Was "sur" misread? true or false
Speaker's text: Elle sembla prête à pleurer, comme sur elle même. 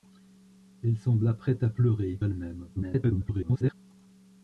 true